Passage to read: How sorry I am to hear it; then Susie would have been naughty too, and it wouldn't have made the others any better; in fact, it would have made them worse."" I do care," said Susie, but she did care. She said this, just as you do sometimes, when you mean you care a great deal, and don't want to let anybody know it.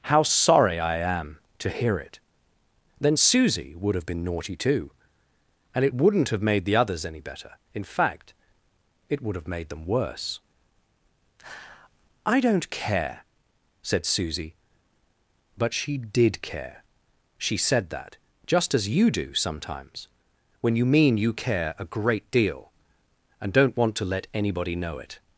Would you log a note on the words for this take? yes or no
yes